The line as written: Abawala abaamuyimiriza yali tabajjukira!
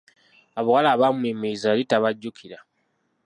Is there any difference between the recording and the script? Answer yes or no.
no